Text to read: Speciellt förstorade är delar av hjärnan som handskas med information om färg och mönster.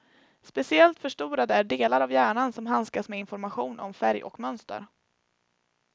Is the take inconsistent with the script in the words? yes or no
no